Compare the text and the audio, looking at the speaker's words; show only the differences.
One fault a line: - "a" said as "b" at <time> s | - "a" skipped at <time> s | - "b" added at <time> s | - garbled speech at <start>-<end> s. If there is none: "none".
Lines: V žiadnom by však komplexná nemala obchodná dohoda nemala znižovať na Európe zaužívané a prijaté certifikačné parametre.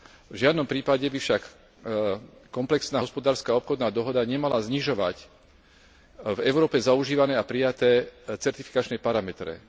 - "prípade" added at 0.6 s
- "nemala" said as "hospodárska" at 3.0 s
- "na" said as "v" at 6.3 s